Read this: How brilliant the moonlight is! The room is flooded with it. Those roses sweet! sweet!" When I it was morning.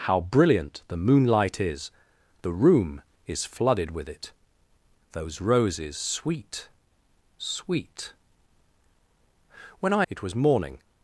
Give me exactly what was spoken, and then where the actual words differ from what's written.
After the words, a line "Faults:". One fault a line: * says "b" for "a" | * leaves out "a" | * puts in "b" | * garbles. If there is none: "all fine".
How brilliant the moonlight is! The room is flooded with it. Those roses sweet! sweet!" When I it was morning.
Faults:
all fine